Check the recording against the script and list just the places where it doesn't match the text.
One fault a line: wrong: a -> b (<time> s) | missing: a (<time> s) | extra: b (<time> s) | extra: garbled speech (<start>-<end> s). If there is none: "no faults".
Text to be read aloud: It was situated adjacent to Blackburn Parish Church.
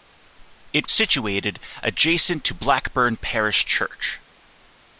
missing: was (0.9 s)